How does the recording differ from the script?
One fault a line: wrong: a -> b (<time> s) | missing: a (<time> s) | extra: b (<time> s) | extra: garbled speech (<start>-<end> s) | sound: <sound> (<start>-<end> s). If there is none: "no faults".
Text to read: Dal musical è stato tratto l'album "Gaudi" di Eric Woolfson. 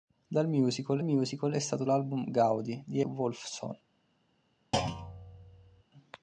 extra: musical (1.0 s)
missing: tratto (1.8 s)
missing: Eric (3.0 s)
sound: thud (4.7-5.8 s)